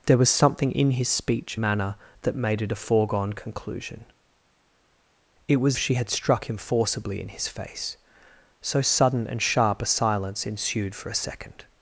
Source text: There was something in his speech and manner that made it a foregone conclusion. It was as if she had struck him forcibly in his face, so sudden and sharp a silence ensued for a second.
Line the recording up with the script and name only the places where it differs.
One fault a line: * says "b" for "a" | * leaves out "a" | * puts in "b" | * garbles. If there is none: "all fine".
* leaves out "and"
* leaves out "as if"